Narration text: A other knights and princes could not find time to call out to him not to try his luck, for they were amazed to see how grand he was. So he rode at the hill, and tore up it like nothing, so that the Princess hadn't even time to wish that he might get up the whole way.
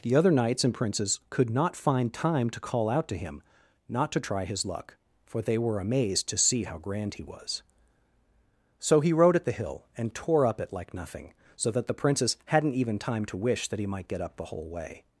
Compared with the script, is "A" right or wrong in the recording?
wrong